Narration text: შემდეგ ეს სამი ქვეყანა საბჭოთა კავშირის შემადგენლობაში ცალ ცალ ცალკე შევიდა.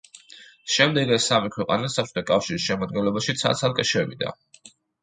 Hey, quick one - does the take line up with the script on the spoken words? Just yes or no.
no